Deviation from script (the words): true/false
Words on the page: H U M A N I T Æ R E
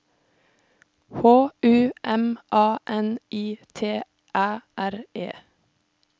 false